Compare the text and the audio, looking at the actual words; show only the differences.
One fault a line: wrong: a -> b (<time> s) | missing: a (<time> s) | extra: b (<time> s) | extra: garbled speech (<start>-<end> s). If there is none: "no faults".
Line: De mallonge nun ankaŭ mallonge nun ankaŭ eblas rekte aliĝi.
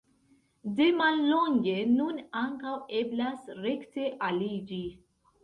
missing: mallonge nun ankaŭ (2.7 s)